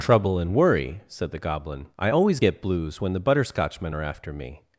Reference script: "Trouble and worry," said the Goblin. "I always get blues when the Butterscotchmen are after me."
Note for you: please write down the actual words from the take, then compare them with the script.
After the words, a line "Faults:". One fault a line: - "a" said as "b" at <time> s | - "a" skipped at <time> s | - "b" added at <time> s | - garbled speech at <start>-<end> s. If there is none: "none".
"Trouble and worry," said the Goblin. "I always get blues when the Butterscotchmen are after me."
Faults:
none